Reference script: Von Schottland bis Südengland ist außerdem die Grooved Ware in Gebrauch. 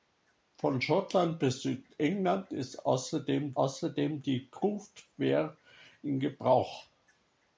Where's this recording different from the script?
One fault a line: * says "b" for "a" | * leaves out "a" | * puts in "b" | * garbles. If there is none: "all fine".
* puts in "außerdem"